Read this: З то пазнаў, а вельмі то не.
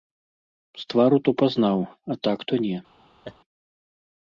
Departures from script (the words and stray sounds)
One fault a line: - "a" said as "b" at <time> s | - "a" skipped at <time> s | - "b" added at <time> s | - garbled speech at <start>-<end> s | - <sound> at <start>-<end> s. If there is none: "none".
- "твару" added at 0.9 s
- "вельмі" said as "так" at 2.3 s
- laugh at 3.2-3.4 s